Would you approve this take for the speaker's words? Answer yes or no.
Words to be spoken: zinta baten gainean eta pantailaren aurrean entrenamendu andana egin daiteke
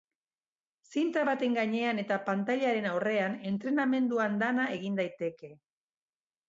yes